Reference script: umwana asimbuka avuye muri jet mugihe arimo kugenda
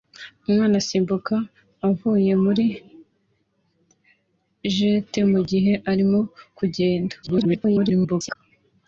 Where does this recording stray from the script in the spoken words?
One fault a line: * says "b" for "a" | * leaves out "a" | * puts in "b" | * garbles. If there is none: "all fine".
* garbles